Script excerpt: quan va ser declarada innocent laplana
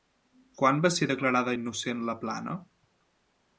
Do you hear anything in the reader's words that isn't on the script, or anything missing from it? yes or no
no